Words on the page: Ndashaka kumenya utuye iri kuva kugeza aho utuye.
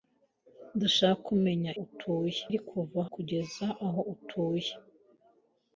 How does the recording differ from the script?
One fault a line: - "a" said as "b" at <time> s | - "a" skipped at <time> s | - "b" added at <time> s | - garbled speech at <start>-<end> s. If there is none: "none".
none